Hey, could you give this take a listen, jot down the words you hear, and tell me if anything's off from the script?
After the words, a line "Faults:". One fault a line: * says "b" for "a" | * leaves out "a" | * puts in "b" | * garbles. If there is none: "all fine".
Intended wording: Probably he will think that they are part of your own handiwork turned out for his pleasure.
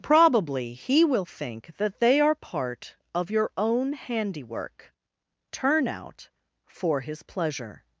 Probably he will think that they are part of your own handiwork turn out for his pleasure.
Faults:
* says "turn" for "turned"